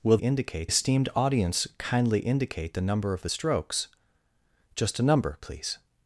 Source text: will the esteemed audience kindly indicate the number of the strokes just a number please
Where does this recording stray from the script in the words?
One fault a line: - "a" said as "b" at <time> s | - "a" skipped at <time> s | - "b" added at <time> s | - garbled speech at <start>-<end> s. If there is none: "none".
- "the" said as "indicate" at 0.2 s